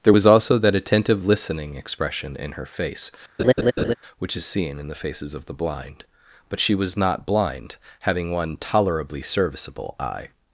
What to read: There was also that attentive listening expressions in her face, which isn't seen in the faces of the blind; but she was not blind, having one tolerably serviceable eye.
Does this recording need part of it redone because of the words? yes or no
yes